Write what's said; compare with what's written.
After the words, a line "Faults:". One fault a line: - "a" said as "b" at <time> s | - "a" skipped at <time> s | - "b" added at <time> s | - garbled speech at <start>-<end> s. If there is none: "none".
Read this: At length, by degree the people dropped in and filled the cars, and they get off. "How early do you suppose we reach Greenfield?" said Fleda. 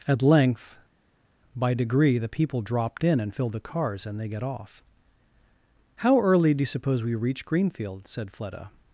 At length, by degree the people dropped in and filled the cars, and they get off. "How early do you suppose we reach Greenfield?" said Fleda.
Faults:
none